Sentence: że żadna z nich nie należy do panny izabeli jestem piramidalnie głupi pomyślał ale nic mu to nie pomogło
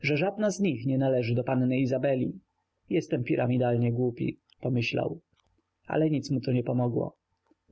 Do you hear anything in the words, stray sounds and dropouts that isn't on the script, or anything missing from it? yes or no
no